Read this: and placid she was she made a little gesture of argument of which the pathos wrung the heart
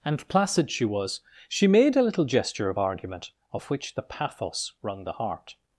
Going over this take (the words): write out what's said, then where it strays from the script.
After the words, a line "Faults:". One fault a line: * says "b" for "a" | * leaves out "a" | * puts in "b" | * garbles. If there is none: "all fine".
and placid she was she made a little gesture of argument of which the pathos wrung the heart
Faults:
all fine